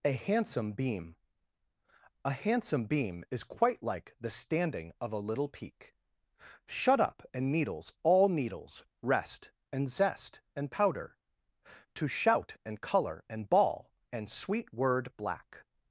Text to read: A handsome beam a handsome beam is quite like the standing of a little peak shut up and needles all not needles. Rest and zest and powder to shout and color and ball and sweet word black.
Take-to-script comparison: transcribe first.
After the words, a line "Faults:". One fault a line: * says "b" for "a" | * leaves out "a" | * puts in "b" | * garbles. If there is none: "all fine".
A handsome beam a handsome beam is quite like the standing of a little peak shut up and needles all needles. Rest and zest and powder to shout and color and ball and sweet word black.
Faults:
* leaves out "not"